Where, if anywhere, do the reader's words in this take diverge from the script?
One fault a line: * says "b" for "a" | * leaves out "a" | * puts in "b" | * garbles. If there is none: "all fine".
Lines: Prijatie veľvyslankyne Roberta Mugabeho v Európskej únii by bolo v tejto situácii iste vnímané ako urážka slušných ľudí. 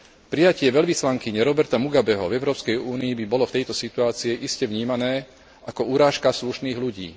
all fine